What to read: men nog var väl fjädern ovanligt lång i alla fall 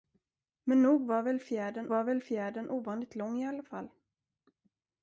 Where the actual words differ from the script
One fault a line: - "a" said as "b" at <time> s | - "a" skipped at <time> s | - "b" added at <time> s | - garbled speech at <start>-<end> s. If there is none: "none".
- "var väl fjädern" added at 1.9 s